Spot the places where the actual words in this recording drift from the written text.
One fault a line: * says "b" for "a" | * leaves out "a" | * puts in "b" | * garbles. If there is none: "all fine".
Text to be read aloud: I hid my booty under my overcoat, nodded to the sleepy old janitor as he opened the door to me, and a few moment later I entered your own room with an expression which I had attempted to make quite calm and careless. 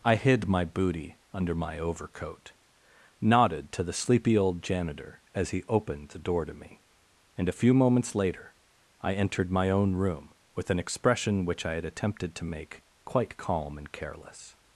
* says "moments" for "moment"
* says "my" for "your"